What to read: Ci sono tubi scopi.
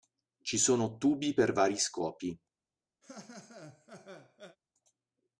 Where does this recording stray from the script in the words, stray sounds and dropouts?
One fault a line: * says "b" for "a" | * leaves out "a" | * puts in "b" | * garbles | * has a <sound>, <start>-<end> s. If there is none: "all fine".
* puts in "per vari"
* has a laugh, 3.0-4.6 s